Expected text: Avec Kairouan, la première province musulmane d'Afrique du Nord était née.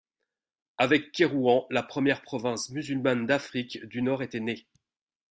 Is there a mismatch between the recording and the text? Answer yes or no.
no